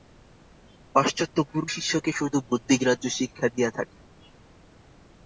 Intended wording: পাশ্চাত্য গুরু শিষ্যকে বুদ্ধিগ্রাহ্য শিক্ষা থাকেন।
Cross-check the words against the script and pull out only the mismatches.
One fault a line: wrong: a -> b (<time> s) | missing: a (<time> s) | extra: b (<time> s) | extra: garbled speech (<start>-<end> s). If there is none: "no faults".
extra: শুধু (2.1 s)
extra: দিয়া (3.5 s)